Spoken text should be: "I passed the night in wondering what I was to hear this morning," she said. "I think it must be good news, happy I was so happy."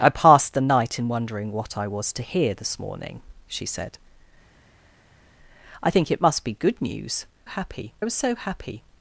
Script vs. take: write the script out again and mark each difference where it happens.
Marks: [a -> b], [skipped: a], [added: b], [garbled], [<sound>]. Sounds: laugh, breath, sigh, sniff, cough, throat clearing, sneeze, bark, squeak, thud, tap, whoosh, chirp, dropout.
"I passed the night in wondering what I was to hear this morning," she said. "I think it must be good news, happy I was so happy."